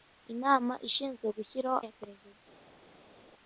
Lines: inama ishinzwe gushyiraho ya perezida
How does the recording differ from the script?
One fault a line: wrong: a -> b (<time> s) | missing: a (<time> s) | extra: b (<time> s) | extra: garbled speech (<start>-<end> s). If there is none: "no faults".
no faults